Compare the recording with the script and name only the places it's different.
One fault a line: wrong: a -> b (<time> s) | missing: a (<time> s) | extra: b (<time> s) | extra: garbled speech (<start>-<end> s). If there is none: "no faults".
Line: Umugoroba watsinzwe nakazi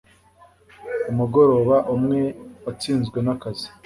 extra: umwe (1.9 s)